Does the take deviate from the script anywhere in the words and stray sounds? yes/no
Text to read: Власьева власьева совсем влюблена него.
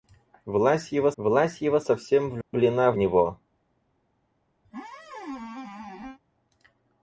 yes